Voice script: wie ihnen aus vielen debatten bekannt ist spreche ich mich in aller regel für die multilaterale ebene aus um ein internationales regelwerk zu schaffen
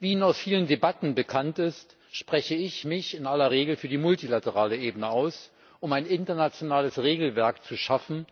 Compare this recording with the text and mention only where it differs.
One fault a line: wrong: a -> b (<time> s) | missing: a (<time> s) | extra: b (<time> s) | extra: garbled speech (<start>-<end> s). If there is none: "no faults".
no faults